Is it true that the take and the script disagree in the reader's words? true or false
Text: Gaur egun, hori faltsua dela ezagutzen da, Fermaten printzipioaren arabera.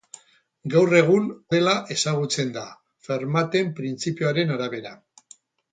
true